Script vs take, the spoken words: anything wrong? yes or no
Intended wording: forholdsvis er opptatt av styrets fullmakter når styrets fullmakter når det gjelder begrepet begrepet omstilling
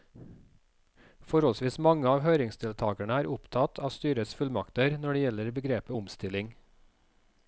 yes